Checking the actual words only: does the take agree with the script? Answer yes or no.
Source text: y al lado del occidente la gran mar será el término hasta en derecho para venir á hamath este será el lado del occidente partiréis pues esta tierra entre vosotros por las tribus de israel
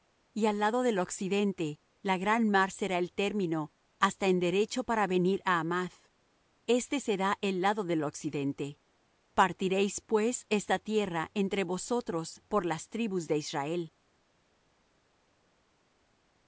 yes